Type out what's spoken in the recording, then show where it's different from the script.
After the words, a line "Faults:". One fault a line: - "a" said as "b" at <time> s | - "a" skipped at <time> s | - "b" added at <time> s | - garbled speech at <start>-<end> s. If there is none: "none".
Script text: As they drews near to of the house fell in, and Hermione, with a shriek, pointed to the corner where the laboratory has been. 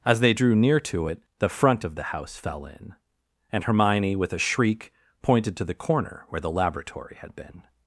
As they drew near to it the front of the house fell in, and Hermione, with a shriek, pointed to the corner where the laboratory had been.
Faults:
- "drews" said as "drew" at 0.3 s
- "it the front" added at 1.0 s
- "has" said as "had" at 7.2 s